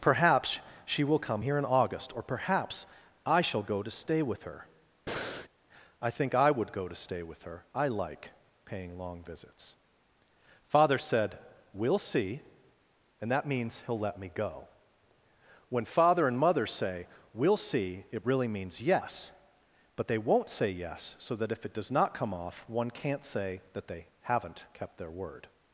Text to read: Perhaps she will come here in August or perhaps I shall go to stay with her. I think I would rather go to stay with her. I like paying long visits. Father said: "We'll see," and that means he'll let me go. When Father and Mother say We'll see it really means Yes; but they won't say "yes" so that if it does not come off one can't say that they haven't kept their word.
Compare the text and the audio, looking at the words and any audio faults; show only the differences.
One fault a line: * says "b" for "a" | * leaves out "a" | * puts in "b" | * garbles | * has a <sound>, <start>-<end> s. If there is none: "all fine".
* has a breath, 5.1-5.5 s
* leaves out "rather"